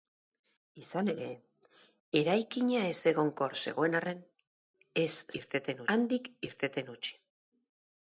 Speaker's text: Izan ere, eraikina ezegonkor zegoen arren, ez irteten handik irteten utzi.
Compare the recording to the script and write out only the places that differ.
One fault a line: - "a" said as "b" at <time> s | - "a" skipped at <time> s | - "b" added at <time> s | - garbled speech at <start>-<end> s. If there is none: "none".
none